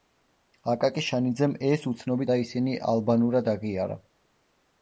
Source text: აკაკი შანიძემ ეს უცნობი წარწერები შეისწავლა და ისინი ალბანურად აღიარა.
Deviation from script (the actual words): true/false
true